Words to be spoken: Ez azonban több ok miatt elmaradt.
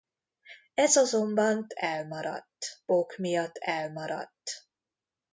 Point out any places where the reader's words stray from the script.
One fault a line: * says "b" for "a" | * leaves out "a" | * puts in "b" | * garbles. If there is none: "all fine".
* says "elmaradt" for "több"